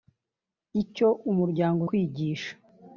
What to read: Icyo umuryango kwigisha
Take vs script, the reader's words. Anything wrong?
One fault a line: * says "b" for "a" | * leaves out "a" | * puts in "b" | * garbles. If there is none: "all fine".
all fine